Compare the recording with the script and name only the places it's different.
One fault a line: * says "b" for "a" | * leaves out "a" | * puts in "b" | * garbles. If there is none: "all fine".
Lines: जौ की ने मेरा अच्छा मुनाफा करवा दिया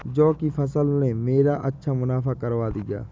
* puts in "फसल"